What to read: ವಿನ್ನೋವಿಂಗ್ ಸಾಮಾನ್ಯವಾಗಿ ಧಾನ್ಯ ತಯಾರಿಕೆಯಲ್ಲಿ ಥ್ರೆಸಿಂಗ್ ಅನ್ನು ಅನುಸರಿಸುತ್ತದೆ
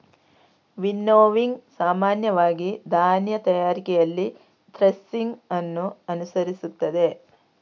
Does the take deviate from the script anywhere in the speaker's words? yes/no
no